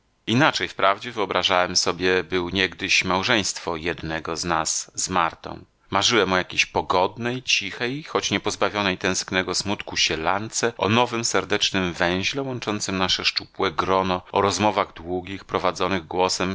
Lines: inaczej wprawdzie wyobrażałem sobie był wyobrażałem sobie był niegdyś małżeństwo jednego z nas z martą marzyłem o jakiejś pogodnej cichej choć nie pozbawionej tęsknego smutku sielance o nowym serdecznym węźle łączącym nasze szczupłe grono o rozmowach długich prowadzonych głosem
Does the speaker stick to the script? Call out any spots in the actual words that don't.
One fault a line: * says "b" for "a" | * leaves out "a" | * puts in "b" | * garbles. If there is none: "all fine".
* leaves out "wyobrażałem sobie był"